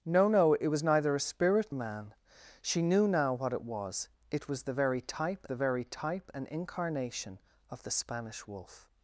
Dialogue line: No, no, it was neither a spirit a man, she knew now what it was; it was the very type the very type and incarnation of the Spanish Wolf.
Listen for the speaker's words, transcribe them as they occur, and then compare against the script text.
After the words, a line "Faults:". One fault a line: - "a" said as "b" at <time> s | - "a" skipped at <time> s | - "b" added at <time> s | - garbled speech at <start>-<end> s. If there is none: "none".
No, no, it was neither a spirit a man, she knew now what it was; it was the very type the very type and incarnation of the Spanish Wolf.
Faults:
none